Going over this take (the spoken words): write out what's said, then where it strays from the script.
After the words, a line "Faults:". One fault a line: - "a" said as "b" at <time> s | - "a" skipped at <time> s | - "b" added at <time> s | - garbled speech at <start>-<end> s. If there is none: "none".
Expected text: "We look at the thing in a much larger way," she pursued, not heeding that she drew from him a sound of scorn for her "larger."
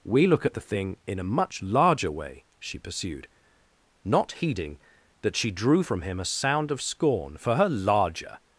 "We look at the thing in a much larger way," she pursued, not heeding that she drew from him a sound of scorn for her "larger."
Faults:
none